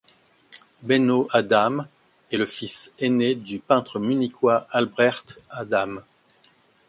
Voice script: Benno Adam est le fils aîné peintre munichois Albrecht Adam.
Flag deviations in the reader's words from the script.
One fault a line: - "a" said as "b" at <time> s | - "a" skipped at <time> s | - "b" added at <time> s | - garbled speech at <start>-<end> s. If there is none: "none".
- "du" added at 3.3 s